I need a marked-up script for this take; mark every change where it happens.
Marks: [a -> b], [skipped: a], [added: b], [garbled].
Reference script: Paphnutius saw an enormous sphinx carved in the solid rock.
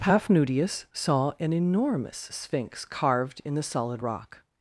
Paphnutius saw an enormous sphinx carved in the solid rock.